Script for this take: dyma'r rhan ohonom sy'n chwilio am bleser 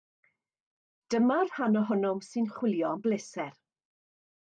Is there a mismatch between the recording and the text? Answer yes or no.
no